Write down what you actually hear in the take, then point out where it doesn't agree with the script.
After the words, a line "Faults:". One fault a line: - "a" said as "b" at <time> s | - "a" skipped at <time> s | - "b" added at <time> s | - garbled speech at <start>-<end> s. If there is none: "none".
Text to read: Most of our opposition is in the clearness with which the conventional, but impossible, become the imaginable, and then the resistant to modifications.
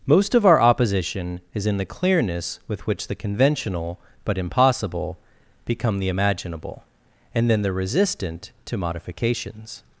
Most of our opposition is in the clearness with which the conventional, but impossible, become the imaginable, and then the resistant to modifications.
Faults:
none